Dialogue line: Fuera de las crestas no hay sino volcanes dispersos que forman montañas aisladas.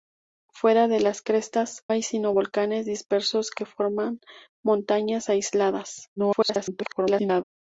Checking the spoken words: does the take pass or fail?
fail